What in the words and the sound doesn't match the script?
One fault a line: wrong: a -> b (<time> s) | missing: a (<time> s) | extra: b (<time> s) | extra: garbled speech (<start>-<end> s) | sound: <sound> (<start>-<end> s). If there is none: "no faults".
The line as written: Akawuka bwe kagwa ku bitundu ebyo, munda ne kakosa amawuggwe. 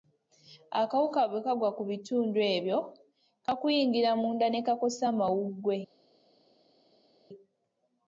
extra: kakuyingira (3.5 s)